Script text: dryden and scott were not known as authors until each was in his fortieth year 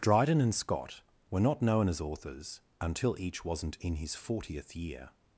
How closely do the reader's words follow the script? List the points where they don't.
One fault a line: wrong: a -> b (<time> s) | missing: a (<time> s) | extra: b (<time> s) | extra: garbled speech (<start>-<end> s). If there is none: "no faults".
wrong: was -> wasn't (3.4 s)